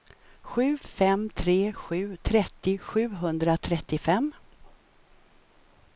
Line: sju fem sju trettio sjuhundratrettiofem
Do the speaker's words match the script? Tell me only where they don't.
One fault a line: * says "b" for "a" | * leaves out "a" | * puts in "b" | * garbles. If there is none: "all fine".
* puts in "tre"